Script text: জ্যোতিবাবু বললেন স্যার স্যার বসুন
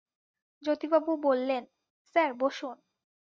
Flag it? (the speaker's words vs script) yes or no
yes